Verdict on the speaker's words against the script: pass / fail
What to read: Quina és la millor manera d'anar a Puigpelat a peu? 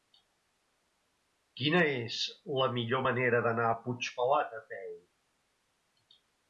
pass